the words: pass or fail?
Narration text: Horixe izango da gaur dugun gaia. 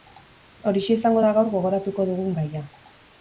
fail